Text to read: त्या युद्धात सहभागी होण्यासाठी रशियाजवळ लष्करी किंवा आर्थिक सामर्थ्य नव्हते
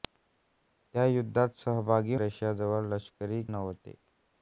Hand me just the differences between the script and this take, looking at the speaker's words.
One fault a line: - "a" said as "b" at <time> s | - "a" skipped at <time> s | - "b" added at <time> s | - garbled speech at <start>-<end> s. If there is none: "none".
- "होण्यासाठी" skipped at 2.1 s
- "किंवा आर्थिक सामर्थ्य" skipped at 3.4 s